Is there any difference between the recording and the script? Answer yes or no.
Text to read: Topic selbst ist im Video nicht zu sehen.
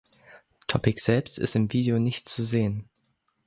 no